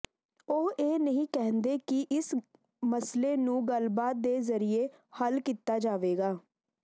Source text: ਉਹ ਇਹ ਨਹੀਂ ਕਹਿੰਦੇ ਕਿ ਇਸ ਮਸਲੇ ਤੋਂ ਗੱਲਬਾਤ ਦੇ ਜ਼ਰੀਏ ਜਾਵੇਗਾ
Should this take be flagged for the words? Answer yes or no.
yes